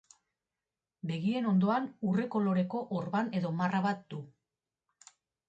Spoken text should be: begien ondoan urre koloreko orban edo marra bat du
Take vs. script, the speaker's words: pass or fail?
pass